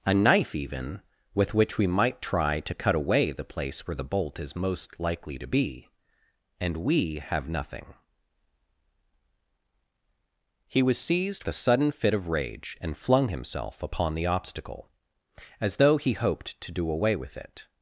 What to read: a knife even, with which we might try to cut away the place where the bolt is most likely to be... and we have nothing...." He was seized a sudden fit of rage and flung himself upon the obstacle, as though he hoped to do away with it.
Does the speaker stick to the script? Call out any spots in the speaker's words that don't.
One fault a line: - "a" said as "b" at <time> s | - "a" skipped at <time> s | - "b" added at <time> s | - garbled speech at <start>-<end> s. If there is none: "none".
none